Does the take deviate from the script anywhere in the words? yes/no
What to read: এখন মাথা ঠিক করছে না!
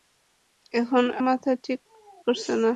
no